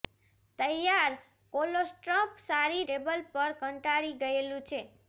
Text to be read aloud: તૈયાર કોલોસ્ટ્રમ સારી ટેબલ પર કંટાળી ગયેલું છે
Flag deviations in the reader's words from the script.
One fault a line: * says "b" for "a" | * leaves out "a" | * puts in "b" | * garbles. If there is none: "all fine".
all fine